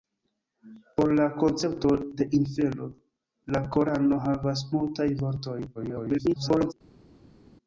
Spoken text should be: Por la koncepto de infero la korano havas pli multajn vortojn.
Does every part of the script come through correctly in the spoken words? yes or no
no